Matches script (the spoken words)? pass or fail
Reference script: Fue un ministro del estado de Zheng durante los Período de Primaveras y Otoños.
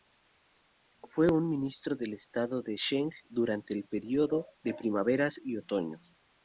fail